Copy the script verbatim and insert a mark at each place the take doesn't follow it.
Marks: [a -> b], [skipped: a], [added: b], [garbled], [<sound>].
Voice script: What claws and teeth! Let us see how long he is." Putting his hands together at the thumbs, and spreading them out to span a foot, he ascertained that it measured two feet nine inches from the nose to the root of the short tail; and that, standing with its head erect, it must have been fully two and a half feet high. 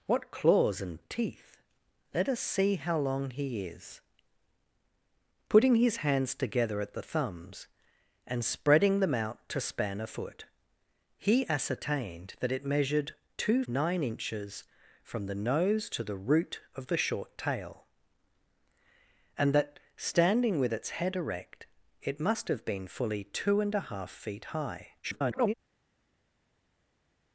What claws and teeth! Let us see how long he is." Putting his hands together at the thumbs, and spreading them out to span a foot, he ascertained that it measured two [skipped: feet] nine inches from the nose to the root of the short tail; and that, standing with its head erect, it must have been fully two and a half feet high. [garbled]